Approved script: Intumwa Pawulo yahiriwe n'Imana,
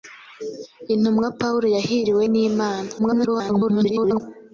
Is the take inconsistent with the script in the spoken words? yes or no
yes